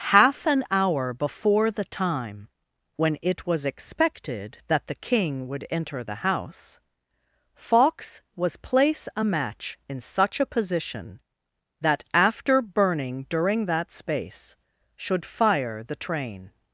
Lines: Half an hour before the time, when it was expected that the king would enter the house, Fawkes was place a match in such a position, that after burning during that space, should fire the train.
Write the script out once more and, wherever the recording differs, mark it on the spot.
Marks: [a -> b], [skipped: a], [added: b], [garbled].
Half an hour before the time, when it was expected that the king would enter the house, Fawkes was place a match in such a position, that after burning during that space, should fire the train.